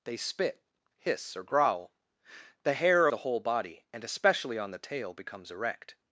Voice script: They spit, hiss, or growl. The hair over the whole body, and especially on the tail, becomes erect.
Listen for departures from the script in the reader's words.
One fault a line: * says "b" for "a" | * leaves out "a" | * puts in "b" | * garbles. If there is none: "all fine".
* leaves out "over"